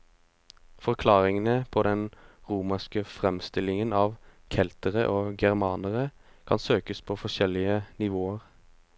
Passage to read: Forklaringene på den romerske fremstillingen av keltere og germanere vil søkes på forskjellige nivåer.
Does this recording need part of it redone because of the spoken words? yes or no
yes